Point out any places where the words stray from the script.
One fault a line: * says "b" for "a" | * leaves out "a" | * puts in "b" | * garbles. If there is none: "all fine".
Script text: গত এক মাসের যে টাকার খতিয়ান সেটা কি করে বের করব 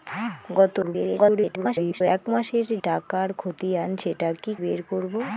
* garbles
* leaves out "যে"
* leaves out "করে"